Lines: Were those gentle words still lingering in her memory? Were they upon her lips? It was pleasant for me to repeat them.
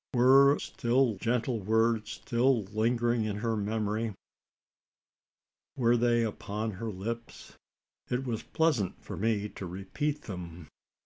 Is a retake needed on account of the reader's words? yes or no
yes